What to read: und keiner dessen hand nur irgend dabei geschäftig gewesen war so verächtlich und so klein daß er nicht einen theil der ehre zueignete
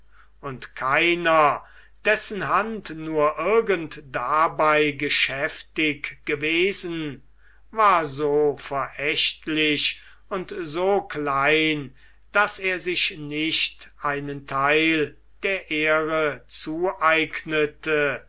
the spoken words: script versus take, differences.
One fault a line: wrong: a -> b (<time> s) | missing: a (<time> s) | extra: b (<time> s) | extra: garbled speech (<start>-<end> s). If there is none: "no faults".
extra: sich (12.8 s)